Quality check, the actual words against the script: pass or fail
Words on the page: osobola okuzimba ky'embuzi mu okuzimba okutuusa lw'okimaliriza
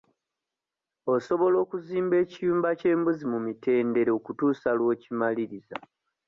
fail